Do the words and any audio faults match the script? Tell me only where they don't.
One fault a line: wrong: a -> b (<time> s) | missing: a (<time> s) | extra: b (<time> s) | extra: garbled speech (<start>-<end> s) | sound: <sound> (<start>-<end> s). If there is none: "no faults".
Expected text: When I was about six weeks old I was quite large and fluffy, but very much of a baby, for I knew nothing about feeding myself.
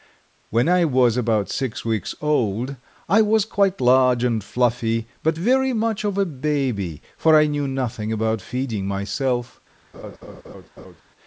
sound: laugh (9.9-11.0 s)